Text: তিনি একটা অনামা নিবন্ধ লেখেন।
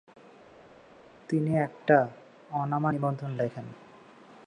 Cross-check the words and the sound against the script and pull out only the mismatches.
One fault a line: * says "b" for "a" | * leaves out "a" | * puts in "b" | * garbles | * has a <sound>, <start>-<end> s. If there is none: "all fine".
all fine